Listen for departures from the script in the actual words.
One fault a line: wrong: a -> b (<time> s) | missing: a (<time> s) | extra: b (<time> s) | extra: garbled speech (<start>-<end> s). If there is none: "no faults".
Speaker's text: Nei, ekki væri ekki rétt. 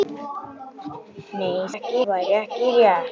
no faults